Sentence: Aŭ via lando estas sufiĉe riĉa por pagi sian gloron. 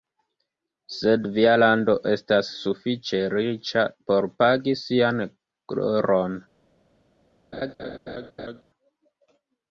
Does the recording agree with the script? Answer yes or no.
no